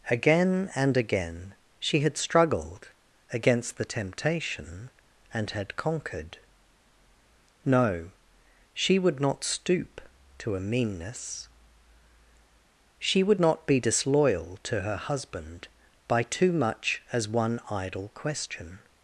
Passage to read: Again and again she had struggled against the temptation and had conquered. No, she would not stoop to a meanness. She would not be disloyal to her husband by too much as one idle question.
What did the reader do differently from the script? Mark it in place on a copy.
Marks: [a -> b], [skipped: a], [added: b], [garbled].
Again and again she had struggled against the temptation and had conquered. No, she would not stoop to a meanness. She would not be disloyal to her husband by too much as one idle question.